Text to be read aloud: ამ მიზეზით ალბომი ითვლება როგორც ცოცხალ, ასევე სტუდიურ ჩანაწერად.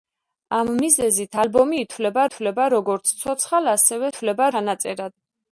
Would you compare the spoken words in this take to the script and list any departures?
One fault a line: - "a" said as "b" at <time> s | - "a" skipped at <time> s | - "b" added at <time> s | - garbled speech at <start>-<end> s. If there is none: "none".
- "ითვლება" added at 2.3 s
- "სტუდიურ" said as "ითვლება" at 4.1 s